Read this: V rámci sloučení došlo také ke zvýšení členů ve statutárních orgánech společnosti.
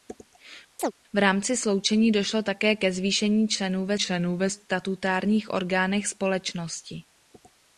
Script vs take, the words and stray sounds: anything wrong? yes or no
yes